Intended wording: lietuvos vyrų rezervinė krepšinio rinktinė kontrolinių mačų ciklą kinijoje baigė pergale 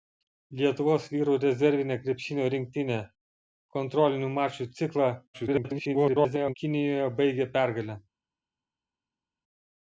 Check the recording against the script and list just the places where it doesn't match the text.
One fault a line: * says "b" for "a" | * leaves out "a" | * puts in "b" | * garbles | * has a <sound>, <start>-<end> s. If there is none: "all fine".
* garbles